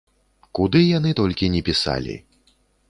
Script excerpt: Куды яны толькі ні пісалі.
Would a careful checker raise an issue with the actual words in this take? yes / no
no